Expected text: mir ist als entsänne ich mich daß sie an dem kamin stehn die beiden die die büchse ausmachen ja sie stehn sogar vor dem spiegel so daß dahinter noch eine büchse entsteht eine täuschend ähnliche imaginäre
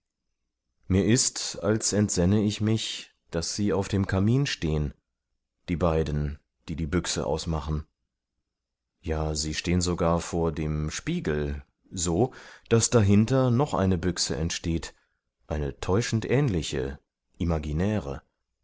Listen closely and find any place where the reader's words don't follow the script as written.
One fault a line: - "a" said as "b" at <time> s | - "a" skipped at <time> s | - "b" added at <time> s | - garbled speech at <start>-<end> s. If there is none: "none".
- "an" said as "auf" at 3.7 s